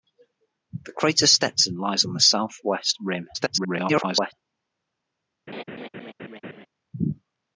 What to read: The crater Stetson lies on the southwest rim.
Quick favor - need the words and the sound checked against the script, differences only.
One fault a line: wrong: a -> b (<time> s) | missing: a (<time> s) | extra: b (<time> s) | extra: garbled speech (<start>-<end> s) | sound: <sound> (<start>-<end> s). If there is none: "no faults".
extra: garbled speech (3.3-4.3 s)
sound: laugh (5.5-6.7 s)